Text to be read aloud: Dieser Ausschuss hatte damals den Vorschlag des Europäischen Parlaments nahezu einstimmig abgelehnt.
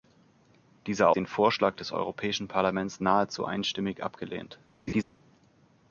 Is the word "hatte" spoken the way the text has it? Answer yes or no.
no